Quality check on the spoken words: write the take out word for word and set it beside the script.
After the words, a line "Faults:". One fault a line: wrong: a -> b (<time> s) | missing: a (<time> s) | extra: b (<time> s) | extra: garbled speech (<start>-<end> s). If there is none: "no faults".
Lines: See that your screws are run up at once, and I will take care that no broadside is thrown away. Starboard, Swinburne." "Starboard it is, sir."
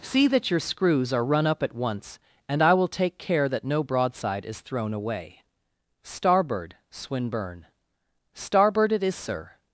See that your screws are run up at once, and I will take care that no broadside is thrown away. Starboard, Swinburne." "Starboard it is, sir."
Faults:
no faults